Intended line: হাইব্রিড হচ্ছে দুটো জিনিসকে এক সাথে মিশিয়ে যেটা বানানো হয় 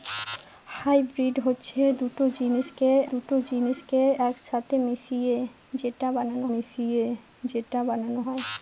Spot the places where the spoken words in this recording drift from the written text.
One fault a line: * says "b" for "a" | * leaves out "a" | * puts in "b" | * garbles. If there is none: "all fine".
* puts in "দুটো জিনিসকে"
* puts in "মিশিয়ে যেটা বানানো"